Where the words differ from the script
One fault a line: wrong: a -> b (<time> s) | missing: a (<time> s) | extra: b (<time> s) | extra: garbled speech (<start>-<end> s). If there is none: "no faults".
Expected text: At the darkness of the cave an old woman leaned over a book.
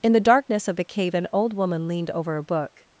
wrong: At -> In (0.0 s)